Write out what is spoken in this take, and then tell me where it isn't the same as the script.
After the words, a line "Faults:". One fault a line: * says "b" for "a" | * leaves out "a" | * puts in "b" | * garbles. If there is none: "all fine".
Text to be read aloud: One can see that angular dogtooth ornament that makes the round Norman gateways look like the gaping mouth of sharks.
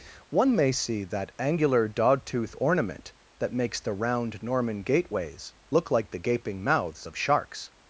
One may see that angular dogtooth ornament that makes the round Norman gateways look like the gaping mouths of sharks.
Faults:
* says "may" for "can"
* says "mouths" for "mouth"